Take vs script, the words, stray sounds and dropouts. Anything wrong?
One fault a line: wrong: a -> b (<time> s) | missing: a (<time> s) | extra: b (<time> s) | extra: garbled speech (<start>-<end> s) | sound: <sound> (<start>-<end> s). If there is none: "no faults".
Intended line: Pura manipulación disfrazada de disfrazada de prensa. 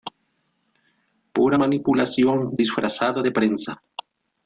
missing: disfrazada de (3.3 s)